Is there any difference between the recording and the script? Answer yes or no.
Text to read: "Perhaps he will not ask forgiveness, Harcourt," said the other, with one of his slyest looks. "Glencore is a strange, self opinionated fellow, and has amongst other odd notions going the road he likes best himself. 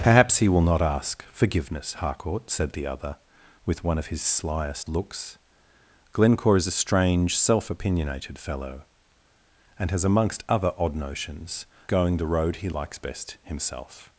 no